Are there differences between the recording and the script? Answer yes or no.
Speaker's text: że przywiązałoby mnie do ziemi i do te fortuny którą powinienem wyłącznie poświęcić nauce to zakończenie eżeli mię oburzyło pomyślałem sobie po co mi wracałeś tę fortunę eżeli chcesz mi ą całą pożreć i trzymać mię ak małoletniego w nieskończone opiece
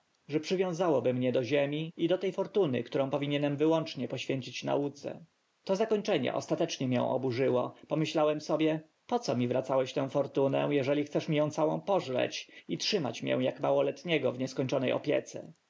yes